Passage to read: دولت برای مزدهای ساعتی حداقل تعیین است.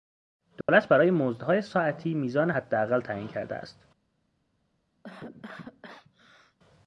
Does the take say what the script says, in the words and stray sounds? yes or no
no